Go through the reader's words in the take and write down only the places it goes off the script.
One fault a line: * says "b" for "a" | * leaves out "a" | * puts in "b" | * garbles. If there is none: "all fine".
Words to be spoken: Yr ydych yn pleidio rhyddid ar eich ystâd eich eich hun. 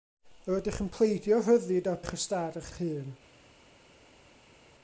all fine